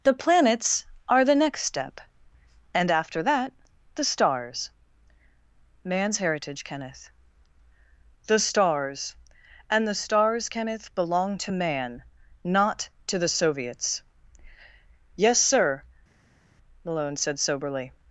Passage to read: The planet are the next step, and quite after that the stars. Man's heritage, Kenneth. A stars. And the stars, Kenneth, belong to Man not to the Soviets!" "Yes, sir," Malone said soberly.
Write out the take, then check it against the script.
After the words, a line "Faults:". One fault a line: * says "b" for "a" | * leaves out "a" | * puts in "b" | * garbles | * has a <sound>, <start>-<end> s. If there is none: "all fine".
The planets are the next step, and after that the stars. Man's heritage, Kenneth. The stars. And the stars, Kenneth, belong to Man not to the Soviets!" "Yes, sir," Malone said soberly.
Faults:
* says "planets" for "planet"
* leaves out "quite"
* says "The" for "A"